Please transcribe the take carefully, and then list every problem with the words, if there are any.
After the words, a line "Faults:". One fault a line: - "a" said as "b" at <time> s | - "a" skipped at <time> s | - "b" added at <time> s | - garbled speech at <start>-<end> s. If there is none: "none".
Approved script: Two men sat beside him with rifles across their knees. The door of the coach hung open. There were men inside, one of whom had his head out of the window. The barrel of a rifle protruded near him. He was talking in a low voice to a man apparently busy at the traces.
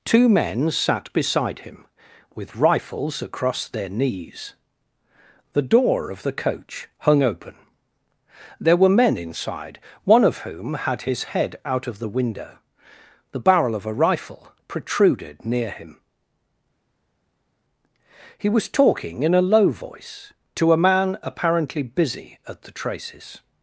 Two men sat beside him with rifles across their knees. The door of the coach hung open. There were men inside, one of whom had his head out of the window. The barrel of a rifle protruded near him. He was talking in a low voice to a man apparently busy at the traces.
Faults:
none